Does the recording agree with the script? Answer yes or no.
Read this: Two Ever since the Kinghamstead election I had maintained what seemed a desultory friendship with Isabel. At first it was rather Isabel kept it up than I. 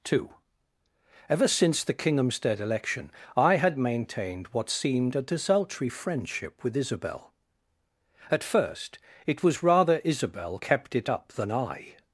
yes